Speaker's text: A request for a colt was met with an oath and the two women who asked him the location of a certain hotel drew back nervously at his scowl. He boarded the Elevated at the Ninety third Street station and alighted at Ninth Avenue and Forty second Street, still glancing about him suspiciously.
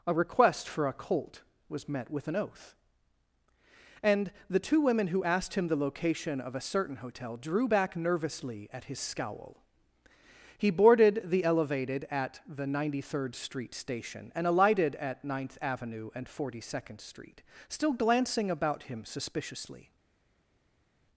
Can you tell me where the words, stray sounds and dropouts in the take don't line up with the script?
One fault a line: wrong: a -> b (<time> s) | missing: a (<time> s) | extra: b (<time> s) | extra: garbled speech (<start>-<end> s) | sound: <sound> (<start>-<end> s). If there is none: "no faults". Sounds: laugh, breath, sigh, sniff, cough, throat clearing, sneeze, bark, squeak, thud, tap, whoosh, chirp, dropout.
no faults